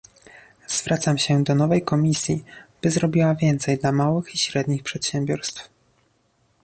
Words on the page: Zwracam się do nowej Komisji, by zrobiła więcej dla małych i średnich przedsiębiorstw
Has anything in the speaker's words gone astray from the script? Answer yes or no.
no